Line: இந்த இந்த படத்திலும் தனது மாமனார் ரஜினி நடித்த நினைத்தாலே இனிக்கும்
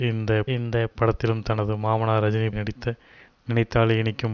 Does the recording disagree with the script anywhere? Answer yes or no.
no